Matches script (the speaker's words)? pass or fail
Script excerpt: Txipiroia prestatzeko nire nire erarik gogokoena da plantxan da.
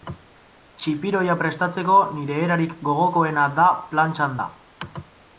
fail